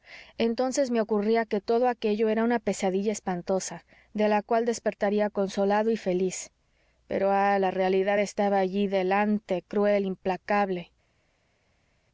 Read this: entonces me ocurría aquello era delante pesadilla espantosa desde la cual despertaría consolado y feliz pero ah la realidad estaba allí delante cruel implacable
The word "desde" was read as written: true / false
false